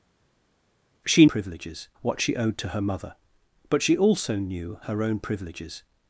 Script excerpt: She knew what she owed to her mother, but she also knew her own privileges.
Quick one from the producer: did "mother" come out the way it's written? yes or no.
yes